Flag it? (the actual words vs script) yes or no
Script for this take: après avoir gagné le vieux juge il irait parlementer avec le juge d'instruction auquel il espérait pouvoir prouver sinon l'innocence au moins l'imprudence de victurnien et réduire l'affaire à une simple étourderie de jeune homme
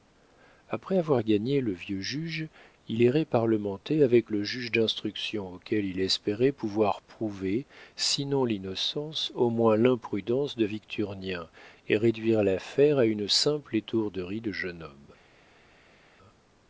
no